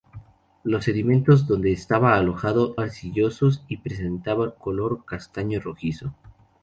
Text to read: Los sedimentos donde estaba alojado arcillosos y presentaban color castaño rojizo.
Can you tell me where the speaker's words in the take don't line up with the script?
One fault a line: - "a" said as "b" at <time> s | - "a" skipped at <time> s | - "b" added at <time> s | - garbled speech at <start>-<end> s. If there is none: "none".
none